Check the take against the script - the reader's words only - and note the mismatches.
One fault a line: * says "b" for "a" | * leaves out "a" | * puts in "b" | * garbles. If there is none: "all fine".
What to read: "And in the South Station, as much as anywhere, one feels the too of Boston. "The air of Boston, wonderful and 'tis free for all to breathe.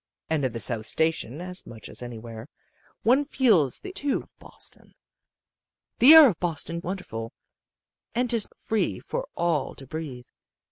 all fine